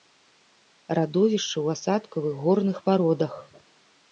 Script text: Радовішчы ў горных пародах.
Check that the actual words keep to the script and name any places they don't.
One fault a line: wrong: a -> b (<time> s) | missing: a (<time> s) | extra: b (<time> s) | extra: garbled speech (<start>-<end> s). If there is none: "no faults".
extra: асадкавых (1.8 s)